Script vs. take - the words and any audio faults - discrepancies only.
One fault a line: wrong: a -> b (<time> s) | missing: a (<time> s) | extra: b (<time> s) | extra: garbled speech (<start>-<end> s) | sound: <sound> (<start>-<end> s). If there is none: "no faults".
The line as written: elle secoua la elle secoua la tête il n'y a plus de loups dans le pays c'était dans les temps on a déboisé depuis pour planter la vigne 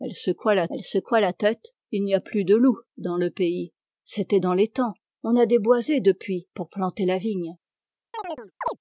sound: chirp (8.1-8.8 s)